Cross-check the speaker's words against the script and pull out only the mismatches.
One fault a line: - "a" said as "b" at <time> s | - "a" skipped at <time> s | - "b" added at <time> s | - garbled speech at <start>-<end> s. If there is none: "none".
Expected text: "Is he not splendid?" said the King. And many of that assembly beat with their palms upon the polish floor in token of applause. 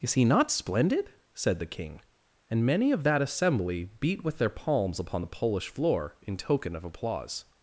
none